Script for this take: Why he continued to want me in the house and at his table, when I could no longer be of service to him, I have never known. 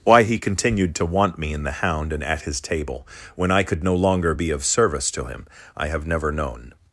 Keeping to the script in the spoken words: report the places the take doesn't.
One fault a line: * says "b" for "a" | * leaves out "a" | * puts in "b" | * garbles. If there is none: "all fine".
* says "hound" for "house"